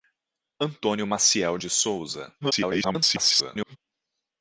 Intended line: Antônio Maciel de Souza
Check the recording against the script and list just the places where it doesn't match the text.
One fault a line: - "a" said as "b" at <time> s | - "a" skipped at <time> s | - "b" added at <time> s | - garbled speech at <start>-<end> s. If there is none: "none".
- garbled speech at 2.4-3.8 s